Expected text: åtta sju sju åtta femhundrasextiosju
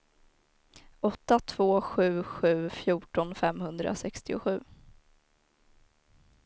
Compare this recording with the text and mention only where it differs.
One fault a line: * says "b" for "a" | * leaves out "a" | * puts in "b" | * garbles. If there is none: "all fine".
* puts in "två"
* says "fjorton" for "åtta"